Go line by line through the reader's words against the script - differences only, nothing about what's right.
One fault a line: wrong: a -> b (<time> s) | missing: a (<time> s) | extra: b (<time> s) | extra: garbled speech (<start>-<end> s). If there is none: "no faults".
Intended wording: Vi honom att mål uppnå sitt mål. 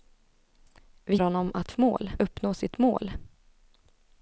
no faults